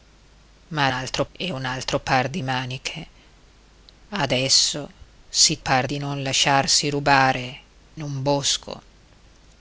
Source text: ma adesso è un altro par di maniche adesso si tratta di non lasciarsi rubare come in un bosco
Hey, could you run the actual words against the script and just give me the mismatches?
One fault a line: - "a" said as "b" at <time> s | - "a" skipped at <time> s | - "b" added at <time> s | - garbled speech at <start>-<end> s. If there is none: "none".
- "adesso" said as "altro" at 0.9 s
- "tratta" said as "par" at 5.6 s
- "come" skipped at 7.6 s